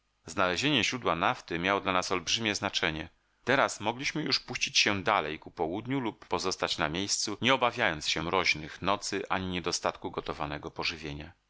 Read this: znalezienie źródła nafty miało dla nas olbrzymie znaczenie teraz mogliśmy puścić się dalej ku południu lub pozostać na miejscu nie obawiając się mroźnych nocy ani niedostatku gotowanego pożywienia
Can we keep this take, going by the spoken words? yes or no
no